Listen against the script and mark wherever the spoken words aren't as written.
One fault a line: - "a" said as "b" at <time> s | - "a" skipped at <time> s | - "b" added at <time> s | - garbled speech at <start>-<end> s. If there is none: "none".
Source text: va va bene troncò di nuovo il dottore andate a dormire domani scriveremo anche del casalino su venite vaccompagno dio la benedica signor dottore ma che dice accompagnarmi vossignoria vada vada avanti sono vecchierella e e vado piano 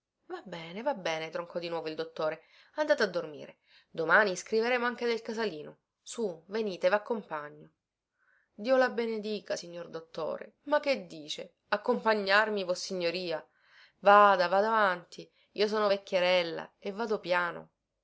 - "bene" added at 0.4 s
- "io" added at 15.5 s
- "e" skipped at 16.9 s